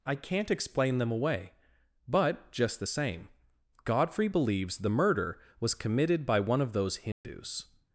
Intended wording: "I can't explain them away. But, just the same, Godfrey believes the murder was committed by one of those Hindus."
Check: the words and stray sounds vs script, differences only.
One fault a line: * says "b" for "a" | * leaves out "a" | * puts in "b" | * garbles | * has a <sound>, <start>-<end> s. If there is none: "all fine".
* has a dropout, 7.1-7.2 s